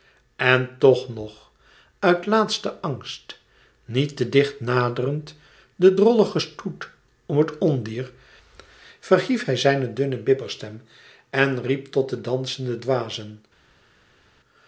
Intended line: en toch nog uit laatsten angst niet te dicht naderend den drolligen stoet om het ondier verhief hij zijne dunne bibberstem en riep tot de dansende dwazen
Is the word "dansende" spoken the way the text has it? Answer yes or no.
yes